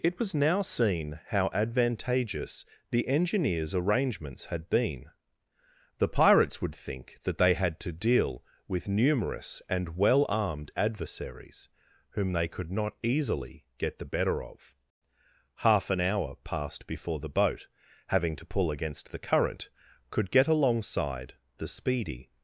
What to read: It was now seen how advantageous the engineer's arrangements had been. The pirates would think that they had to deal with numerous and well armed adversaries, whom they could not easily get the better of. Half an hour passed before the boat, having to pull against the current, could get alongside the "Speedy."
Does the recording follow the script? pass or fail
pass